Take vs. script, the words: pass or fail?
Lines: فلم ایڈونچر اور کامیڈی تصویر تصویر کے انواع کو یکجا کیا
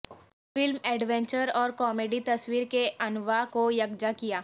fail